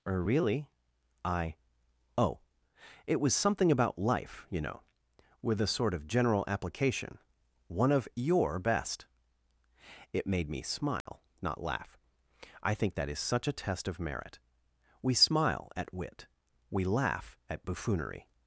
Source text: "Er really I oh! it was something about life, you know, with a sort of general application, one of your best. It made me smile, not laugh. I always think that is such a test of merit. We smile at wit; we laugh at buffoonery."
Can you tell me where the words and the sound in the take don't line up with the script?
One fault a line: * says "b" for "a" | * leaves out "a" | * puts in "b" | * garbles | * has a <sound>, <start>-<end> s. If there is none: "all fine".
* has a dropout, 11.0-11.1 s
* leaves out "always"